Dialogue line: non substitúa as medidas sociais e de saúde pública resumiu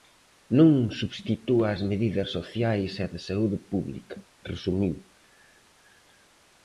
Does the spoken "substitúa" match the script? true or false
true